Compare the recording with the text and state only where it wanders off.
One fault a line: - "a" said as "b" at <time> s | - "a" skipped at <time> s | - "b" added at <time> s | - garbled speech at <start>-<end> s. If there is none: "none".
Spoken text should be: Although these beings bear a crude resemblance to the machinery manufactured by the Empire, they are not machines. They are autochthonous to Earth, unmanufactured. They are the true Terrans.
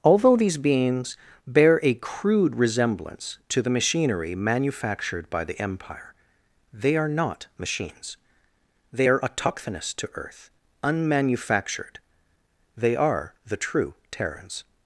none